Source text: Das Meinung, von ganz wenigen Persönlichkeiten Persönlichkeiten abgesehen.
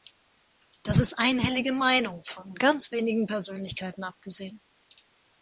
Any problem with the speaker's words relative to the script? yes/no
yes